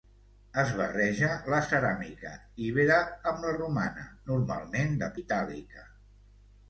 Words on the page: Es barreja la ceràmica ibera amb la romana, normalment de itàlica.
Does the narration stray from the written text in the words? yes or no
no